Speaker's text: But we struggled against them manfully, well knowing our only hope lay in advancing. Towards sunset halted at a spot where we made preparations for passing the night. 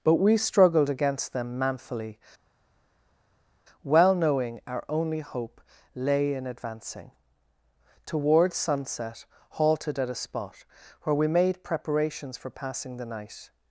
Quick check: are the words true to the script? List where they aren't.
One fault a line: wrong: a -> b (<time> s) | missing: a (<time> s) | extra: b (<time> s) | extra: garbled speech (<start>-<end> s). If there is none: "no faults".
no faults